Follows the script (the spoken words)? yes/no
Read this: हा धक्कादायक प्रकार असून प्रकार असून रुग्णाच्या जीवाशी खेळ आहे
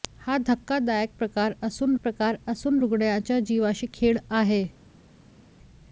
yes